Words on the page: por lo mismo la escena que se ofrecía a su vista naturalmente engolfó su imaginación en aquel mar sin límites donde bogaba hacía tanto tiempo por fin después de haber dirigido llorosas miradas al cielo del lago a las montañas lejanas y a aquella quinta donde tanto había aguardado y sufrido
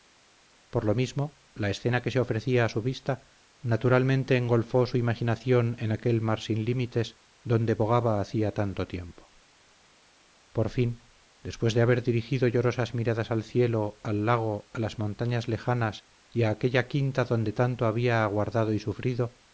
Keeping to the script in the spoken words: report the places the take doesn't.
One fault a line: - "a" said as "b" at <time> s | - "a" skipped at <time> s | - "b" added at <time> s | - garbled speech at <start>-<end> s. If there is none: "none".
- "del" said as "al" at 14.0 s